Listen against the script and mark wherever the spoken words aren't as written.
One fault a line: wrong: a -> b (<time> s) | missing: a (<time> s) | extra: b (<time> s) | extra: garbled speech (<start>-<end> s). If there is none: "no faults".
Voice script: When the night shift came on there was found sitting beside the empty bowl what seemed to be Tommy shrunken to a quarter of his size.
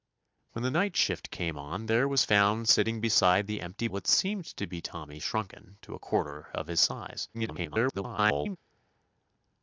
missing: bowl (3.9 s)
extra: garbled speech (7.3-8.6 s)